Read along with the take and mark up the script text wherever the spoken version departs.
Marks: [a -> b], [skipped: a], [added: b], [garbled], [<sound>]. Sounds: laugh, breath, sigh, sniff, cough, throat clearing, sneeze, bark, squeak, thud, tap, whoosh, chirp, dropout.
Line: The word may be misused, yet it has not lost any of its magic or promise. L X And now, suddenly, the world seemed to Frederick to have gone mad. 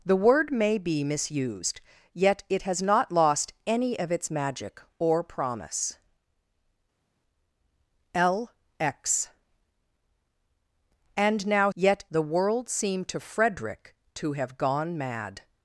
The word may be misused, yet it has not lost any of its magic or promise. L X And now, [suddenly, -> yet] the world seemed to Frederick to have gone mad.